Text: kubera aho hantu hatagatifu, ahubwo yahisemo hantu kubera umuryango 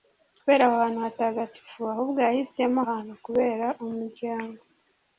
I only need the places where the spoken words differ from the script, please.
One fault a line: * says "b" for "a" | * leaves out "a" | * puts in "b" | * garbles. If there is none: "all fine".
all fine